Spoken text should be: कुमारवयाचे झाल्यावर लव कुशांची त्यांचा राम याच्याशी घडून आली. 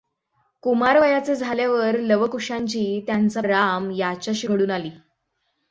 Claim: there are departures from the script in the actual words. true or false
false